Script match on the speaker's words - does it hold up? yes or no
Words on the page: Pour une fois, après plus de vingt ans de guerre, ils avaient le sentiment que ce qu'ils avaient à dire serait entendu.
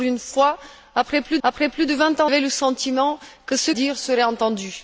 no